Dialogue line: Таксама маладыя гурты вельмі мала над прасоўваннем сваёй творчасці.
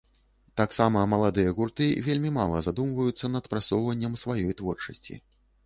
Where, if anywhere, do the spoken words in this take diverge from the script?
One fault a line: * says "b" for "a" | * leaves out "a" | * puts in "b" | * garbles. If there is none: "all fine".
* puts in "задумваюцца"